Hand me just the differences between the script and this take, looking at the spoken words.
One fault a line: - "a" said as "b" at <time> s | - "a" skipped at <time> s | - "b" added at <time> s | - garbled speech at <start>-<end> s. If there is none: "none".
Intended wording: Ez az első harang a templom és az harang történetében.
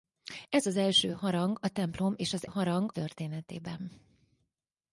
none